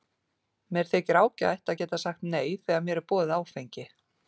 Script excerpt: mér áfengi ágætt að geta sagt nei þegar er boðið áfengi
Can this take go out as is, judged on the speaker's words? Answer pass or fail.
fail